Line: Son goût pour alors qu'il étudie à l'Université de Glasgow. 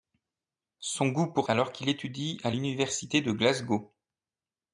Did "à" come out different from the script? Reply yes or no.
no